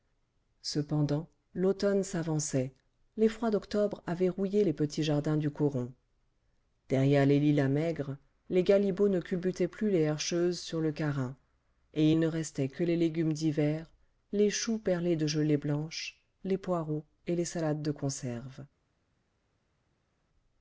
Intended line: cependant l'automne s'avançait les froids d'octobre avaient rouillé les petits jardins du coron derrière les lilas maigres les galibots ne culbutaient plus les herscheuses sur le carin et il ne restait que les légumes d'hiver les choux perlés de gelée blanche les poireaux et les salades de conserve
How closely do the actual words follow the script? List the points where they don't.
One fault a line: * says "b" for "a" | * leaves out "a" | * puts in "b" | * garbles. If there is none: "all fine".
all fine